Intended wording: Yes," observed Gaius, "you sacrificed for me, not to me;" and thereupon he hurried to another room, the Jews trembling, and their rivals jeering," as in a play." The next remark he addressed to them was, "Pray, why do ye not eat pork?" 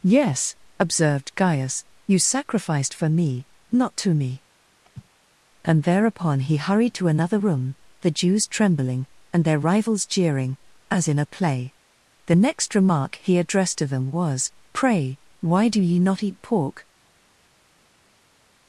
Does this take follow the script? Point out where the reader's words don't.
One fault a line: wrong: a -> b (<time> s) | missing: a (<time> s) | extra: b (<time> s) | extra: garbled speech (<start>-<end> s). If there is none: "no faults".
no faults